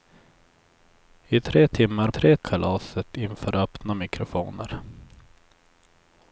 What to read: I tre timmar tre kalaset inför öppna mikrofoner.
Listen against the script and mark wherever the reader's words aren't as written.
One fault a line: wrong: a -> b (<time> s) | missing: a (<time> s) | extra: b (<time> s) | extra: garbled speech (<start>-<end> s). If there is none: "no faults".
no faults